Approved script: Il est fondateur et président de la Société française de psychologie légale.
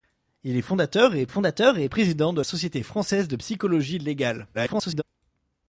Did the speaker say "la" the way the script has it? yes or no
no